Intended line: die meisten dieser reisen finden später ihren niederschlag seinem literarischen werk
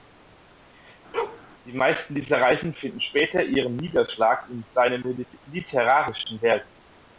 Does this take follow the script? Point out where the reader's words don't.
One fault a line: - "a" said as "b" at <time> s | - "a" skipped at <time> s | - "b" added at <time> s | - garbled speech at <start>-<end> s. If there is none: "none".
- "in" added at 4.5 s